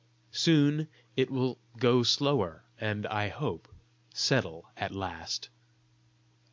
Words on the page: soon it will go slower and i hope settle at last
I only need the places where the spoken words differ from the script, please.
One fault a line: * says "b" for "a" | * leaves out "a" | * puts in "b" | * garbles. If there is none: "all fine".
all fine